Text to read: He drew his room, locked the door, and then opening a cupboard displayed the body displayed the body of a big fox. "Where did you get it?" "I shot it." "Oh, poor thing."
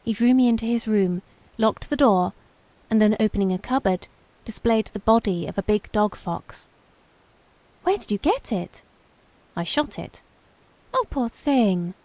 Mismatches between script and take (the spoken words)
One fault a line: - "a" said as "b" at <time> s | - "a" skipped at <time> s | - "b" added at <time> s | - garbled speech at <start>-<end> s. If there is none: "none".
- "me into" added at 0.3 s
- "displayed the body" skipped at 5.5 s
- "dog" added at 5.9 s